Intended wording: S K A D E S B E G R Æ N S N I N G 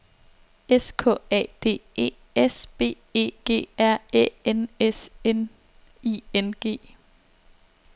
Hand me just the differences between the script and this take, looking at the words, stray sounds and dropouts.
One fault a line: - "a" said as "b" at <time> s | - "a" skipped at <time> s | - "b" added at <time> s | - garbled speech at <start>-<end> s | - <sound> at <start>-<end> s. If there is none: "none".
none